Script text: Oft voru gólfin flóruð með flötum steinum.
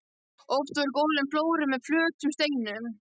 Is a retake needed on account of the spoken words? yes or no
no